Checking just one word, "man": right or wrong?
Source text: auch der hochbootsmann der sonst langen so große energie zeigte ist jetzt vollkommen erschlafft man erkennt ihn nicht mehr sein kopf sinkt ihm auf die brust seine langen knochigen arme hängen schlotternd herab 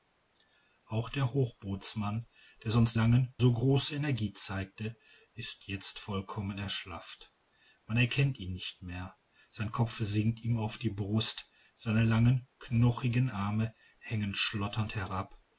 right